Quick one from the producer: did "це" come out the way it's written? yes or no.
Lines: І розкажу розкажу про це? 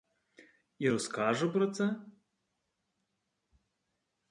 yes